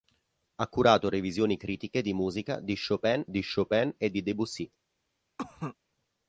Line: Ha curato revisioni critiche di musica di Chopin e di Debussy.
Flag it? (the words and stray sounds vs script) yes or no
yes